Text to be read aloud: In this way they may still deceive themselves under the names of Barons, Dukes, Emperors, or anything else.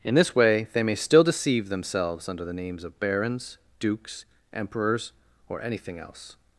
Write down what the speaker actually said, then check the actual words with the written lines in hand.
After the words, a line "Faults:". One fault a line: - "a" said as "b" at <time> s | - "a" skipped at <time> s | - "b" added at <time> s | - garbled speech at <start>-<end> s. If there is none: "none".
In this way they may still deceive themselves under the names of Barons, Dukes, Emperors, or anything else.
Faults:
none